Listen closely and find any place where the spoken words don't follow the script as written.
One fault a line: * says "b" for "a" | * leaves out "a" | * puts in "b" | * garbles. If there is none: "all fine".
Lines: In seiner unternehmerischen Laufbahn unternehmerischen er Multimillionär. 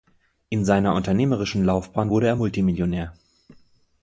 * says "wurde" for "unternehmerischen"